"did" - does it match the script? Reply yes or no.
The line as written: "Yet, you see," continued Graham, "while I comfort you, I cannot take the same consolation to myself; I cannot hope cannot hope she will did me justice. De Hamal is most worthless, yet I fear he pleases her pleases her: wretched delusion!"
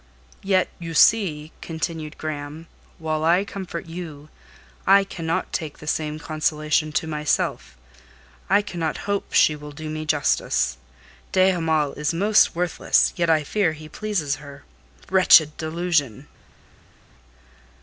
no